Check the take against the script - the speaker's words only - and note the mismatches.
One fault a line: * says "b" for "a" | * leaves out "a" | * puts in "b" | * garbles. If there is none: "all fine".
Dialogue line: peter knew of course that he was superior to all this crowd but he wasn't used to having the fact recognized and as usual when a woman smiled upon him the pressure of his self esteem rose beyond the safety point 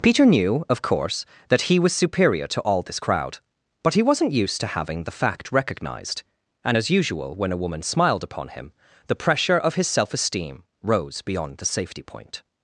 all fine